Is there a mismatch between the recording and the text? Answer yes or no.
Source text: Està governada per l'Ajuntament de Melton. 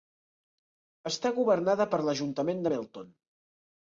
no